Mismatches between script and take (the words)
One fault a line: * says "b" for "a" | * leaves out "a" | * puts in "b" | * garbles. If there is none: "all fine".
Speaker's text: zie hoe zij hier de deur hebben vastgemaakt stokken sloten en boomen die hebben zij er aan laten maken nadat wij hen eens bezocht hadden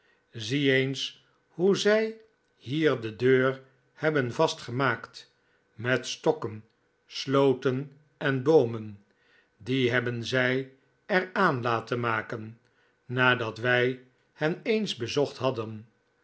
* puts in "eens"
* puts in "met"